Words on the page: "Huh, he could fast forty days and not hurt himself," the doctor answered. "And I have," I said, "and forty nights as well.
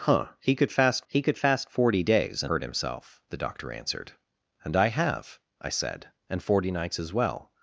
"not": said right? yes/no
no